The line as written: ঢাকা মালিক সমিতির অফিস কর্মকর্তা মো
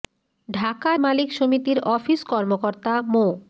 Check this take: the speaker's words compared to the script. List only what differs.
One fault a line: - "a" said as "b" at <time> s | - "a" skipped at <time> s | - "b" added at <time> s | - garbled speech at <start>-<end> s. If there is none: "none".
none